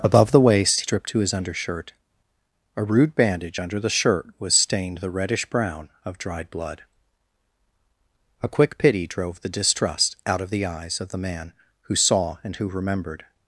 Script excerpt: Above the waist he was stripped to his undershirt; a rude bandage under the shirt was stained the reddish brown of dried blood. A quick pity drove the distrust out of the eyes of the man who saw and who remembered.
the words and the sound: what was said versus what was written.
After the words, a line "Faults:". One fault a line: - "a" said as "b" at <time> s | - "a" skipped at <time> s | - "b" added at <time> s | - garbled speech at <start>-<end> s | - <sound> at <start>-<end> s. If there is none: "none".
Above the waist stripped to his undershirt; a rude bandage under the shirt was stained the reddish brown of dried blood. A quick pity drove the distrust out of the eyes of the man who saw and who remembered.
Faults:
- "he was" skipped at 0.8 s